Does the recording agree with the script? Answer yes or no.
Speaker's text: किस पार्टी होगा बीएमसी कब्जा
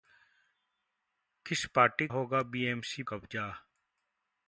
yes